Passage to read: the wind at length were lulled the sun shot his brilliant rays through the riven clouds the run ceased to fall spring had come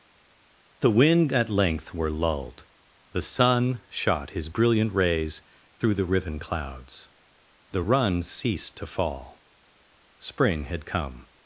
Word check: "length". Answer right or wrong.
right